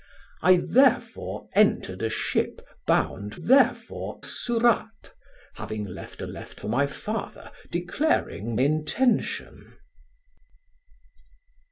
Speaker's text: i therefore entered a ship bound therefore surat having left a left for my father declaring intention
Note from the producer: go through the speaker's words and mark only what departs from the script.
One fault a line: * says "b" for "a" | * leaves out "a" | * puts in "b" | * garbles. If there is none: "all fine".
all fine